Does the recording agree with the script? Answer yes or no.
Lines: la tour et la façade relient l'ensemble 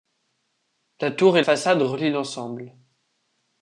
no